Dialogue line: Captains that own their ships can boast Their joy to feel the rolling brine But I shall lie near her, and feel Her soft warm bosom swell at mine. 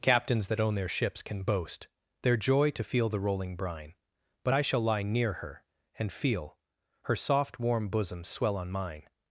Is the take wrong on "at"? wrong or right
wrong